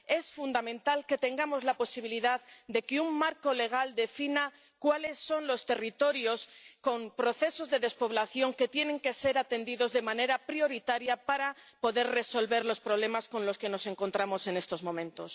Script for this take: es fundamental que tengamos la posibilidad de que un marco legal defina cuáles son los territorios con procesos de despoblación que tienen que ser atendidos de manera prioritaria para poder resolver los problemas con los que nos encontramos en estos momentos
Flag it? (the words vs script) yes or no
no